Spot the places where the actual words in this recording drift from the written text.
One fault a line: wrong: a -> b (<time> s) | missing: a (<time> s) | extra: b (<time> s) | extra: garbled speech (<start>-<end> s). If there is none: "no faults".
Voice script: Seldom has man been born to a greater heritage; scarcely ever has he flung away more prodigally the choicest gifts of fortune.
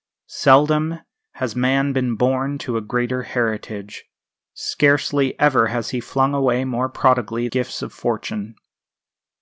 missing: the choicest (7.5 s)